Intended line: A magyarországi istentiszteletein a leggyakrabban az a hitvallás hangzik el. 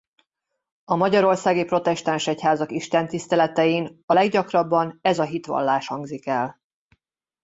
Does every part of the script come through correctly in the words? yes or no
no